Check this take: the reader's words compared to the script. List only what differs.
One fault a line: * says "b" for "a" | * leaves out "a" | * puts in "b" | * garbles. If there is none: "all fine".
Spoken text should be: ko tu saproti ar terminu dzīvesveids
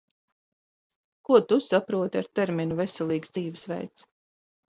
* puts in "veselīgs"